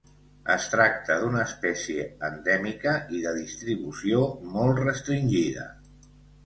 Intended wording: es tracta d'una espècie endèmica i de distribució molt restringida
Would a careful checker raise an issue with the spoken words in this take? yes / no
no